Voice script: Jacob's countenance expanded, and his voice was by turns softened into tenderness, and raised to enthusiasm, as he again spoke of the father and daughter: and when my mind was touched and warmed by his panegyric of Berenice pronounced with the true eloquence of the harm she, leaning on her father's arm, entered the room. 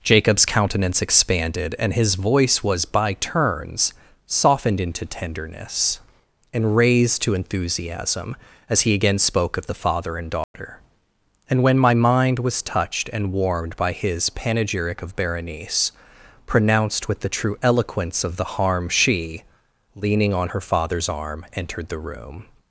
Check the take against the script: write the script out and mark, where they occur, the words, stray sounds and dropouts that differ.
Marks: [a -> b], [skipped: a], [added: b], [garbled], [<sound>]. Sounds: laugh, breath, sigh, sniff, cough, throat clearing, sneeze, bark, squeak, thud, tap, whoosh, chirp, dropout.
Jacob's countenance expanded, and his voice was by turns softened into tenderness, and raised to enthusiasm, as he again spoke of the father and daughter: [dropout] and when my mind was touched and warmed by his panegyric of Berenice pronounced with the true eloquence of the harm she, leaning on her father's arm, entered the room.